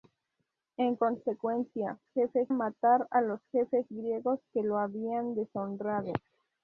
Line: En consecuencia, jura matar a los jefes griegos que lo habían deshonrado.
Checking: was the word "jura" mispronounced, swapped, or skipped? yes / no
yes